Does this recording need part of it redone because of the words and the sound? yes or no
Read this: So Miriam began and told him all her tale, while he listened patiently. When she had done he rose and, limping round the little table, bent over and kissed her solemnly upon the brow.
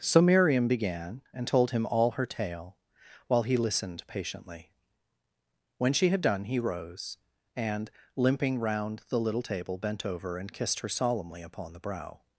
no